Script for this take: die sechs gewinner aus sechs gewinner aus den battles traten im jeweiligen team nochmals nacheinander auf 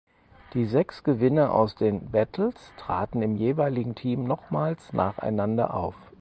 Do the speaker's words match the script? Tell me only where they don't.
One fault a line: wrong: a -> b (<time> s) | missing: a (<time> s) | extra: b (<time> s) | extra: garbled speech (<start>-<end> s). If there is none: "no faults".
missing: sechs gewinner aus (1.8 s)